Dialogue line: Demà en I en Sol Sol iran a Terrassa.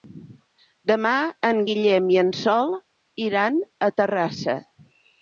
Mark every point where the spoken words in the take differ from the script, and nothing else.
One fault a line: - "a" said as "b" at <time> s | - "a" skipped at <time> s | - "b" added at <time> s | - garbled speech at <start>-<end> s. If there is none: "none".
- "Guillem" added at 1.7 s
- "Sol" skipped at 2.7 s